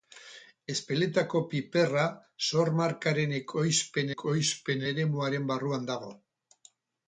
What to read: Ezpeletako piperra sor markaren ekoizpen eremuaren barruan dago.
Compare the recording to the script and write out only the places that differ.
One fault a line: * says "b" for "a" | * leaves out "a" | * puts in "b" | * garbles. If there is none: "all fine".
* puts in "ekoizpen"